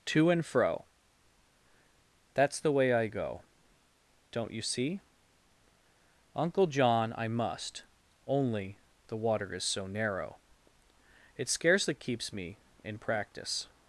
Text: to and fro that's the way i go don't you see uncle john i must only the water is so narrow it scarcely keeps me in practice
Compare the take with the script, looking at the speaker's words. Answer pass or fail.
pass